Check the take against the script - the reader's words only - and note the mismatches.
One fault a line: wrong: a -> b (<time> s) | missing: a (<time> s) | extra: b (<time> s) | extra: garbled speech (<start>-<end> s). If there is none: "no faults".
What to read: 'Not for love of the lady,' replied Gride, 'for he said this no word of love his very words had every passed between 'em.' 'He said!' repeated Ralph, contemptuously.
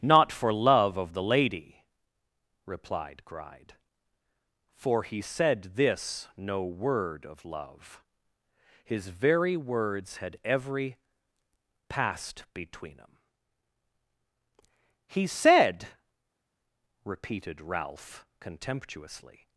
no faults